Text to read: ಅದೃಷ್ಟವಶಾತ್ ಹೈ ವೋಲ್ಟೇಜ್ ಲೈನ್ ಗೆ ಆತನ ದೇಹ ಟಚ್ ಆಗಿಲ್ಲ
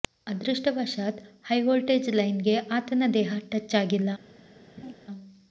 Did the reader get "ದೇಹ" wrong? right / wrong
right